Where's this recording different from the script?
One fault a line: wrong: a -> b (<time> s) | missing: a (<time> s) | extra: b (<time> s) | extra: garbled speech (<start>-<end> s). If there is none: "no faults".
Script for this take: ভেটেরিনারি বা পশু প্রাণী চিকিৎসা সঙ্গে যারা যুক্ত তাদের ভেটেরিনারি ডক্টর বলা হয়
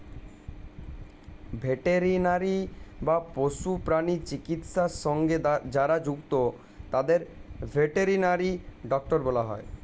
no faults